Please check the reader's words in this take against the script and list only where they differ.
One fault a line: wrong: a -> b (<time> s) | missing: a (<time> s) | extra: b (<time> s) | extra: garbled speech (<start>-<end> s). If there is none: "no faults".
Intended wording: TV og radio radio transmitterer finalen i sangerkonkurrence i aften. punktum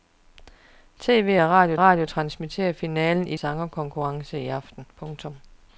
no faults